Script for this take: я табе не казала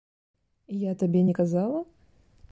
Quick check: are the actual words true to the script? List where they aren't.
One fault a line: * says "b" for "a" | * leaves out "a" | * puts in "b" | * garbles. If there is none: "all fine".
all fine